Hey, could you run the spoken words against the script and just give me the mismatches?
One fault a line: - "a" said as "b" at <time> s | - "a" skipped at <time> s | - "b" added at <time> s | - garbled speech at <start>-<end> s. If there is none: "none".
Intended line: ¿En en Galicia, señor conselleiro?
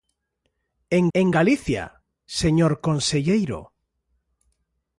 none